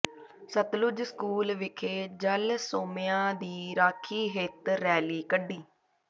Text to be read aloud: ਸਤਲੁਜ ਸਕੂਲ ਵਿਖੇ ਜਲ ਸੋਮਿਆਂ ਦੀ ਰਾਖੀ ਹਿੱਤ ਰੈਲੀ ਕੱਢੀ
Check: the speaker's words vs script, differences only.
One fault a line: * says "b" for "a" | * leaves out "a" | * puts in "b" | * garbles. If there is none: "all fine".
all fine